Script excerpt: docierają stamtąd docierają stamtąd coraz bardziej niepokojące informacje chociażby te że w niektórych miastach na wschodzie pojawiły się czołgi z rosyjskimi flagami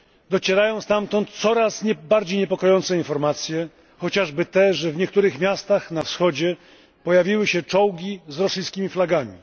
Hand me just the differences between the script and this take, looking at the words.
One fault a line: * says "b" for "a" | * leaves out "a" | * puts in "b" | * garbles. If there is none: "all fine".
* leaves out "docierają stamtąd"